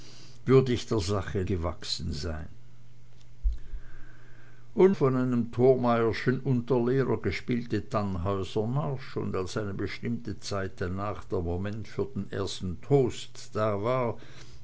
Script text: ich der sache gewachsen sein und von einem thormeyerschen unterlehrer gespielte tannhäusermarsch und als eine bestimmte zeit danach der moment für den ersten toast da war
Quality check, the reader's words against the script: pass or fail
pass